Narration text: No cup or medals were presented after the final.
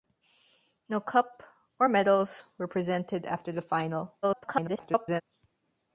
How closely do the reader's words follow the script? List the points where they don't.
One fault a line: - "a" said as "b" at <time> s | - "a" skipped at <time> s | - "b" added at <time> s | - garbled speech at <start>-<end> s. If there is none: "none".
- garbled speech at 4.2-5.2 s